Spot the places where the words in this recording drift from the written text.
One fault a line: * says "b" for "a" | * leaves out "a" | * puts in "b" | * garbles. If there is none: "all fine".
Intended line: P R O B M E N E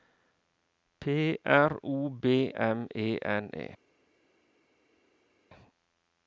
all fine